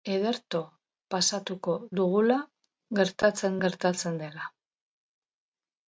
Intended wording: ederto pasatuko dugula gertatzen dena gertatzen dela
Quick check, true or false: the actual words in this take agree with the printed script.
false